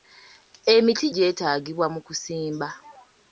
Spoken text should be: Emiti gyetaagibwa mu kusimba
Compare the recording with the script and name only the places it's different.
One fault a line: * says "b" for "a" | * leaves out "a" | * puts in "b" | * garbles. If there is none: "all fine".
all fine